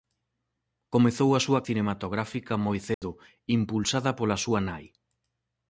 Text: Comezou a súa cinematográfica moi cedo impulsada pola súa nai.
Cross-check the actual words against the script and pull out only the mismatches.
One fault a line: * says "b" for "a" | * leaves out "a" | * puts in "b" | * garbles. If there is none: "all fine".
all fine